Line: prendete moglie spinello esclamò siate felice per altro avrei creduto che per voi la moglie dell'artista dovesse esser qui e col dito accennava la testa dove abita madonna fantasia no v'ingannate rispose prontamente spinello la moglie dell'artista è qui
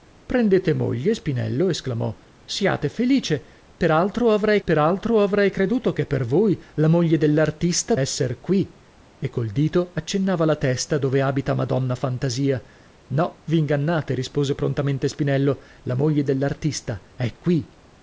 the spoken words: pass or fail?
fail